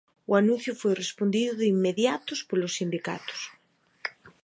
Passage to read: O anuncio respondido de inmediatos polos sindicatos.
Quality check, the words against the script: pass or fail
fail